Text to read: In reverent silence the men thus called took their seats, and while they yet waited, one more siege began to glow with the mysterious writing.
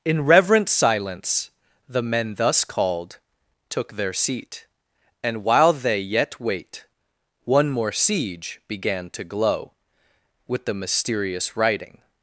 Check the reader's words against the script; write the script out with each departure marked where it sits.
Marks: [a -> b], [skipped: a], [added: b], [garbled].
In reverent silence the men thus called took their [seats, -> seat] and while they yet [waited, -> wait] one more siege began to glow with the mysterious writing.